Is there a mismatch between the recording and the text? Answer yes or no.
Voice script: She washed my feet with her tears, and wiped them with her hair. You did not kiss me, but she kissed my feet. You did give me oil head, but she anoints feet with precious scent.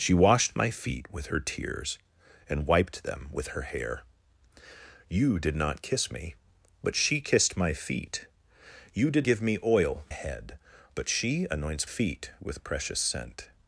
no